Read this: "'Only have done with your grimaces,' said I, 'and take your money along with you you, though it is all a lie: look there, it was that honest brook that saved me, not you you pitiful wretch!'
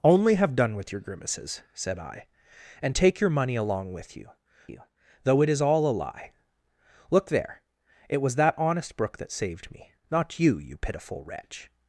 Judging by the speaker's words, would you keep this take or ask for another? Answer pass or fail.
pass